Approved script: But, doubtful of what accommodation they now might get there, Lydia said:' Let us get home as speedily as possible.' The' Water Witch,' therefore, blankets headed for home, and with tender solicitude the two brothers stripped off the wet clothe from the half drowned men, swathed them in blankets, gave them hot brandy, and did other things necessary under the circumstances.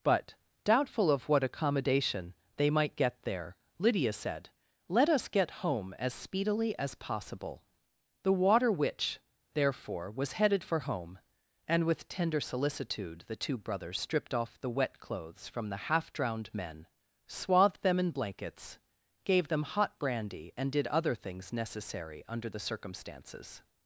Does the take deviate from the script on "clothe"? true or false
true